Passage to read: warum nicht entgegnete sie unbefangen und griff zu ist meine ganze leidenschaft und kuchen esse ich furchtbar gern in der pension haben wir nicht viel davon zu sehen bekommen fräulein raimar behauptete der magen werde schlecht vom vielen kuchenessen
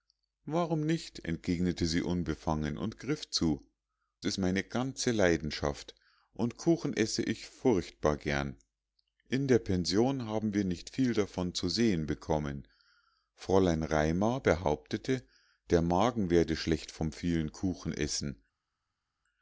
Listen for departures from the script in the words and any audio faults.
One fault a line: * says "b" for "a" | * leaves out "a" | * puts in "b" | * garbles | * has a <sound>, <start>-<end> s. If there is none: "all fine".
all fine